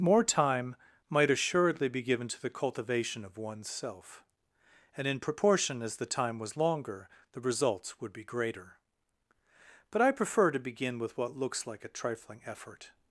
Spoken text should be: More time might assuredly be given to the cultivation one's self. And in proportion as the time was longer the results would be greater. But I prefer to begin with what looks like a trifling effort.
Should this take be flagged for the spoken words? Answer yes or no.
yes